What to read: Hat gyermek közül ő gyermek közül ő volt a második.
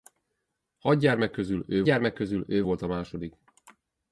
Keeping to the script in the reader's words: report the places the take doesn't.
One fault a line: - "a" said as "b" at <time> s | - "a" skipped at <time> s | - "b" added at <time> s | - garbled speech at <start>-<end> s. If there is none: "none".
none